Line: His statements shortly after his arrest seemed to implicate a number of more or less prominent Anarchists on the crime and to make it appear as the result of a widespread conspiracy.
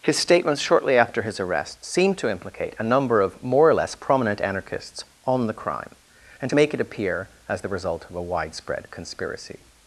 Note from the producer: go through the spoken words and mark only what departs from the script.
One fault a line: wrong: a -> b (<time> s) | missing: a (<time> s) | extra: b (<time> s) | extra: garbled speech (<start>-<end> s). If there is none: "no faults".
no faults